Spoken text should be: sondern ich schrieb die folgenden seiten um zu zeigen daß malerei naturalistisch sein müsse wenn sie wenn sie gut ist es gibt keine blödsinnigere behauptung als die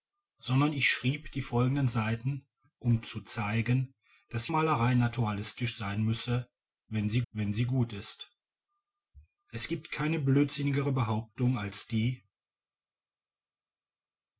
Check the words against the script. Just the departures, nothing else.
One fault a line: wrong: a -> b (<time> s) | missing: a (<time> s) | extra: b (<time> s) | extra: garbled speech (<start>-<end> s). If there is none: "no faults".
no faults